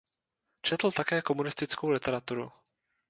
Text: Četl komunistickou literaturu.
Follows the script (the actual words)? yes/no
no